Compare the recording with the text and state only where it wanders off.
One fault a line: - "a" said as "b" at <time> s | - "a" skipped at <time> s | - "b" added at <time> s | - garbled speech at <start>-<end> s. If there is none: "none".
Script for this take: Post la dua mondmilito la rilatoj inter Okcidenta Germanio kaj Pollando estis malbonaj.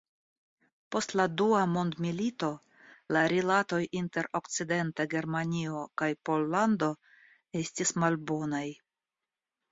none